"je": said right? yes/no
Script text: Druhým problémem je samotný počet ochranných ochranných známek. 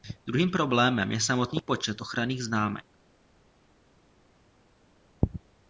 yes